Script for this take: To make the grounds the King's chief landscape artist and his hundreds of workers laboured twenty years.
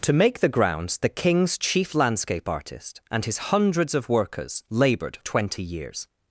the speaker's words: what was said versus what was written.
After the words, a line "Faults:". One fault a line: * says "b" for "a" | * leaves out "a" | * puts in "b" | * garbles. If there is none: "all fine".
To make the grounds the King's chief landscape artist and his hundreds of workers laboured twenty years.
Faults:
all fine